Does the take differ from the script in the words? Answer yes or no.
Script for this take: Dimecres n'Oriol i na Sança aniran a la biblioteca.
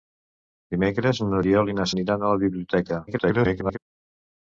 yes